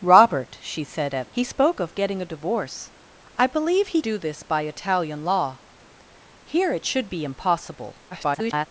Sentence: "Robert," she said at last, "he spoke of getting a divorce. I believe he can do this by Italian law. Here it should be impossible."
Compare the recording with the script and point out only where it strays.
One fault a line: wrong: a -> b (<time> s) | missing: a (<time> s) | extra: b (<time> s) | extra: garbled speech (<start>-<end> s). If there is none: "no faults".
missing: last (1.3 s)
missing: can (4.0 s)
extra: garbled speech (8.1-8.7 s)